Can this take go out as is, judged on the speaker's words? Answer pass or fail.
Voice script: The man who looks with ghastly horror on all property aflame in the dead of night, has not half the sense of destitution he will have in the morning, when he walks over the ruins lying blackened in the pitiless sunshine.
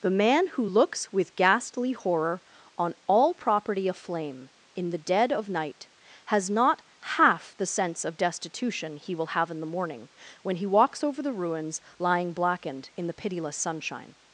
pass